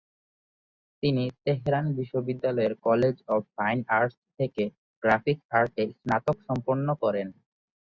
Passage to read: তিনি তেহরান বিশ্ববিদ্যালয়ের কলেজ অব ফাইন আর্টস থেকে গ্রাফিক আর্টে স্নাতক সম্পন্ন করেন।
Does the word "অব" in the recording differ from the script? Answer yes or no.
no